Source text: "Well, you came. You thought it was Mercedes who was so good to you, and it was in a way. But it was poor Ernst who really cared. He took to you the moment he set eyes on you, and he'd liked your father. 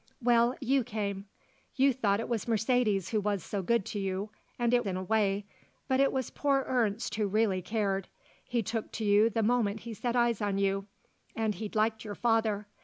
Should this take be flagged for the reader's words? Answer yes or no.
yes